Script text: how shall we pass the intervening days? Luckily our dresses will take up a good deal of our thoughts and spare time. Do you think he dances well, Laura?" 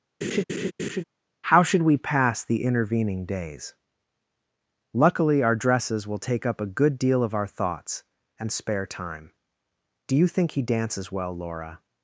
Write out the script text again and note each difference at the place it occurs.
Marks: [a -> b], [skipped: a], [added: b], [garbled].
how [shall -> should] we pass the intervening days? Luckily our dresses will take up a good deal of our thoughts and spare time. Do you think he dances well, Laura?"